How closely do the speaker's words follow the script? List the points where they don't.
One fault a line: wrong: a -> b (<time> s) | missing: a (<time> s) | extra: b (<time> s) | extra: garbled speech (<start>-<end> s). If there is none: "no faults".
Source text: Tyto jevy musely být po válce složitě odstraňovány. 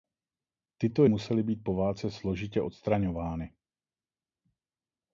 missing: jevy (1.1 s)